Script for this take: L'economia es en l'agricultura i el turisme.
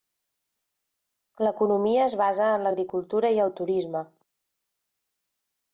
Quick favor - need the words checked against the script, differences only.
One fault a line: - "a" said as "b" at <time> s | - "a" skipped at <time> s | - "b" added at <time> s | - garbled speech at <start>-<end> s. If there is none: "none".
- "basa" added at 2.2 s